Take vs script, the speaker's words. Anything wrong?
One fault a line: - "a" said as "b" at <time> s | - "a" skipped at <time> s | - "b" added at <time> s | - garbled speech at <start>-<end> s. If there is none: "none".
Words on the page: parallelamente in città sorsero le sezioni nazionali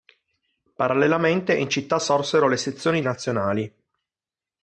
none